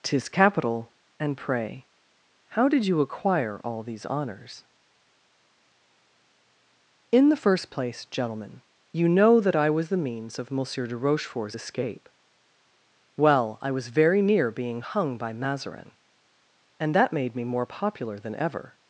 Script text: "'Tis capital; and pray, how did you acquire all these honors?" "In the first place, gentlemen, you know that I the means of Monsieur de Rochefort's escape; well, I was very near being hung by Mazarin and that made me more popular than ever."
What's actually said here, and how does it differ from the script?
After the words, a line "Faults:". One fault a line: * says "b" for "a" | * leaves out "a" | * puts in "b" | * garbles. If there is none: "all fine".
"'Tis capital; and pray, how did you acquire all these honors?" "In the first place, gentlemen, you know that I was the means of Monsieur de Rochefort's escape; well, I was very near being hung by Mazarin and that made me more popular than ever."
Faults:
* puts in "was"